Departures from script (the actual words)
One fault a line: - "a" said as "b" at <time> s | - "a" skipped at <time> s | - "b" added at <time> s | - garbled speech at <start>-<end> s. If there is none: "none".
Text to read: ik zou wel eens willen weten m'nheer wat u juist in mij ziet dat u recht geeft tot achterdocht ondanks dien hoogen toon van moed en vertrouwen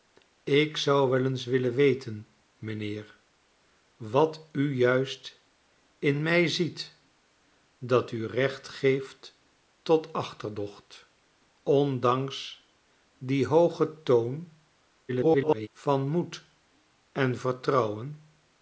- garbled speech at 15.1-15.7 s